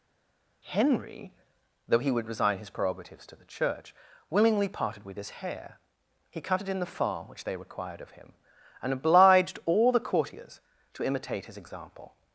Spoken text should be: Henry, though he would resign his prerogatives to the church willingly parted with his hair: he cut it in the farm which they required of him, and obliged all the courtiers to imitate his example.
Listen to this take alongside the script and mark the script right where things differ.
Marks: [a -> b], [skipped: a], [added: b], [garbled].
Henry, though he would resign his prerogatives to the church willingly parted with his hair: he cut it in the farm which they required of him, and obliged all the courtiers to imitate his example.